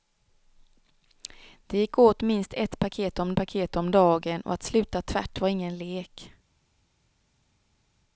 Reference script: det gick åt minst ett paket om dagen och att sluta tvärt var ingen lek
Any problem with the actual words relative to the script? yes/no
yes